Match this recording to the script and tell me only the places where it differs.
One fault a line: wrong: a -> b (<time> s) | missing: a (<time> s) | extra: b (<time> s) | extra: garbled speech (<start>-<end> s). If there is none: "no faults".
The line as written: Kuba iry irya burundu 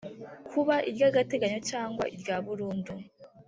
extra: agateganyo cyangwa (1.1 s)